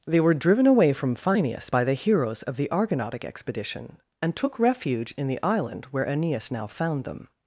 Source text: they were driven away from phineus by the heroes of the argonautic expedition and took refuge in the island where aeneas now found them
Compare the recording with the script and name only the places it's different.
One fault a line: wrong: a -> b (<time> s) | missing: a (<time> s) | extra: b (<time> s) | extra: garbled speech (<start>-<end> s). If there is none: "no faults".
no faults